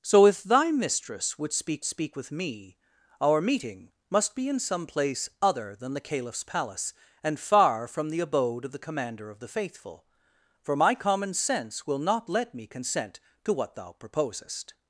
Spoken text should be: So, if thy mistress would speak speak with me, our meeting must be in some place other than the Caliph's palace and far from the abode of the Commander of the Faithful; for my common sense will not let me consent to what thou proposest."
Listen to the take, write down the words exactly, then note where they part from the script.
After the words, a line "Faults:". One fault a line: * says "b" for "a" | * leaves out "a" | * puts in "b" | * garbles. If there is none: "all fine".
So, if thy mistress would speak speak with me, our meeting must be in some place other than the Caliph's palace and far from the abode of the Commander of the Faithful; for my common sense will not let me consent to what thou proposest."
Faults:
all fine